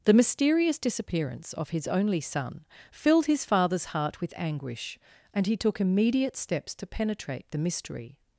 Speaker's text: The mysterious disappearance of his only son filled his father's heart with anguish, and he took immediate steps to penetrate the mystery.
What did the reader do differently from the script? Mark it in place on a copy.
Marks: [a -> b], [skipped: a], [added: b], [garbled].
The mysterious disappearance of his only son filled his father's heart with anguish, and he took immediate steps to penetrate the mystery.